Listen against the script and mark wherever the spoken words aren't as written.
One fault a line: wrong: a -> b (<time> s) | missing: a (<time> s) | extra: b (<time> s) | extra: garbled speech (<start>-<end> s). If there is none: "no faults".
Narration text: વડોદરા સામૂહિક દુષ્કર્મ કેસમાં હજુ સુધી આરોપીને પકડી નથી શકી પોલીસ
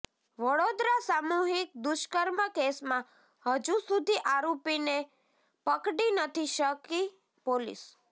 no faults